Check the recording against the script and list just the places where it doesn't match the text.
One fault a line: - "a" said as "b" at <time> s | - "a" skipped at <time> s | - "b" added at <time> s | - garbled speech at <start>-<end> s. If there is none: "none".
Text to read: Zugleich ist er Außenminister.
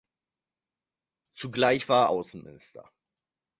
- "ist" said as "war" at 1.9 s